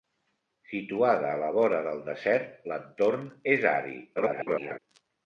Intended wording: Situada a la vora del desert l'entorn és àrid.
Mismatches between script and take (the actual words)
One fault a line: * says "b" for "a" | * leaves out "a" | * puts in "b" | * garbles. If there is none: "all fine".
* garbles